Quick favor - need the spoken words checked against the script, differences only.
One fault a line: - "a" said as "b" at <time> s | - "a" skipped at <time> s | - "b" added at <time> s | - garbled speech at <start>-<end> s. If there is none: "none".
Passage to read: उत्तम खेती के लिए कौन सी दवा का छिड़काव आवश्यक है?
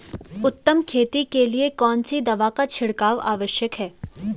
none